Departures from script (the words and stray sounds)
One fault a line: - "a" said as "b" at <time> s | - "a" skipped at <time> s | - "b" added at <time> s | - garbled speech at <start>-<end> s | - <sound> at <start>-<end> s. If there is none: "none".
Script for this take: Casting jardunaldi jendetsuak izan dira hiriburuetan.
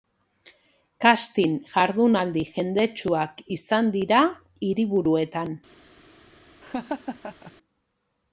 - laugh at 6.6-7.5 s